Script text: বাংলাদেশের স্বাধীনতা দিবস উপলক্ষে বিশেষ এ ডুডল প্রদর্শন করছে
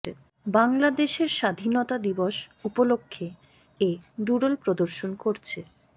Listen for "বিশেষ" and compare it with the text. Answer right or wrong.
wrong